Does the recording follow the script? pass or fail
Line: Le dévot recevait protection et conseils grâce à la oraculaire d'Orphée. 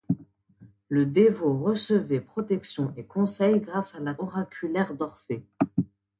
pass